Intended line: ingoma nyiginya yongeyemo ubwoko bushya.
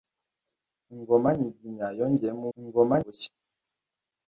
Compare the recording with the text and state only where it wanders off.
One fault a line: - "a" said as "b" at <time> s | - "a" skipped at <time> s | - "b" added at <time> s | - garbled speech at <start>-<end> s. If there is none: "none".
- "ubwoko" said as "ingoma" at 2.6 s